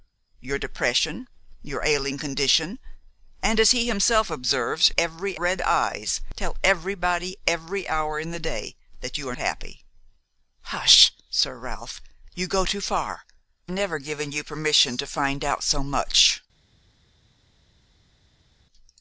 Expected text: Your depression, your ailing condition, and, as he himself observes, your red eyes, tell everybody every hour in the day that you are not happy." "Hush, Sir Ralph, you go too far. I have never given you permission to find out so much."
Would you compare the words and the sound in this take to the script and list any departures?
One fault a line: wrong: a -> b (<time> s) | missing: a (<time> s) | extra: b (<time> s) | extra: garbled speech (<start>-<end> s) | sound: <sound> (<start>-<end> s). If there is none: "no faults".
wrong: your -> every (5.0 s)
missing: not (9.4 s)
missing: I have (13.2 s)